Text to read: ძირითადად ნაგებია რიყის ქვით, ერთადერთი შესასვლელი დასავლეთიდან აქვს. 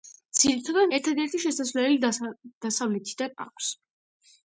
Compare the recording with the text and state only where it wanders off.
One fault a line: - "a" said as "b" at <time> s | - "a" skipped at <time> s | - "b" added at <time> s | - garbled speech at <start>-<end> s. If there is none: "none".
- "ნაგებია რიყის ქვით" skipped at 0.9 s